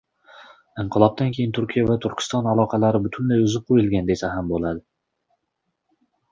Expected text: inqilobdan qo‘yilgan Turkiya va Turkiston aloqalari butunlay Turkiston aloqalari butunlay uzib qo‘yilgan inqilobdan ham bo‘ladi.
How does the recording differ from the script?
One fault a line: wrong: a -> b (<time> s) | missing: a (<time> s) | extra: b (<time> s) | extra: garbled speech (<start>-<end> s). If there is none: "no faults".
wrong: qo‘yilgan -> keyin (1.4 s)
missing: Turkiston aloqalari butunlay (3.4 s)
wrong: inqilobdan -> desa (4.1 s)